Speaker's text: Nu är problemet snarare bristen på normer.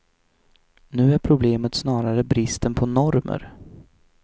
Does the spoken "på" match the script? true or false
true